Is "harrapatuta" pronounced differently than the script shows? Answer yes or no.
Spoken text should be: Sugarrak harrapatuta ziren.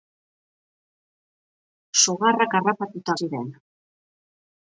no